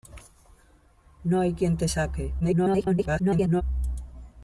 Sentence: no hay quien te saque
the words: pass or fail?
fail